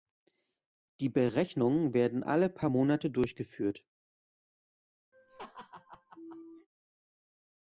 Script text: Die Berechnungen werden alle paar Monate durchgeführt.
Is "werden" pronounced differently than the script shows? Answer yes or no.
no